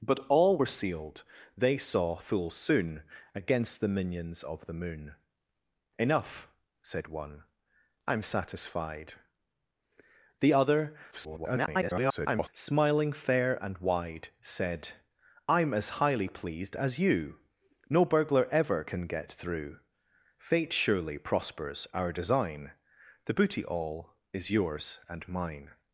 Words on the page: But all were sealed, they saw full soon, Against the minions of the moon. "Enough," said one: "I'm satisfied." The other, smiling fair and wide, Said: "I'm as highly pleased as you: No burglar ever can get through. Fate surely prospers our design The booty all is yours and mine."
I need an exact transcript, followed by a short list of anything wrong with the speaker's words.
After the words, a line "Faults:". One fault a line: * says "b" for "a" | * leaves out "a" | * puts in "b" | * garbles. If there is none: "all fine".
But all were sealed, they saw full soon, Against the minions of the moon. "Enough," said one: "I'm satisfied." The other, [garbled] smiling fair and wide, Said: "I'm as highly pleased as you: No burglar ever can get through. Fate surely prospers our design The booty all is yours and mine."
Faults:
* garbles